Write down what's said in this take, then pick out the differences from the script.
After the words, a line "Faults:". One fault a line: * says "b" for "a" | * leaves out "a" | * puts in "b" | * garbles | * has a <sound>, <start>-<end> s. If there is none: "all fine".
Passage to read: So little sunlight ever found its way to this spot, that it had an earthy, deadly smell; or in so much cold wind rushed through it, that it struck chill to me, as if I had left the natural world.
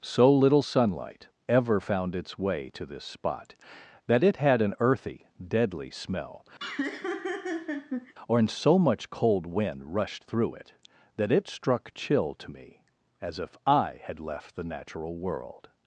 So little sunlight ever found its way to this spot, that it had an earthy, deadly smell; or in so much cold wind rushed through it, that it struck chill to me, as if I had left the natural world.
Faults:
* has a laugh, 6.6-8.1 s